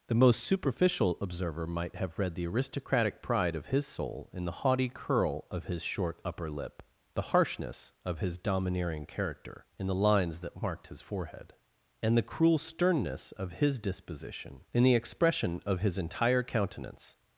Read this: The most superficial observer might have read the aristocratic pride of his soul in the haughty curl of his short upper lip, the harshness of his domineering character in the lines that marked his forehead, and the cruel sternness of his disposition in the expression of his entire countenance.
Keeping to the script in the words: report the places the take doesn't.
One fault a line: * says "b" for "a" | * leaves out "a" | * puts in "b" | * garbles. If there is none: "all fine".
all fine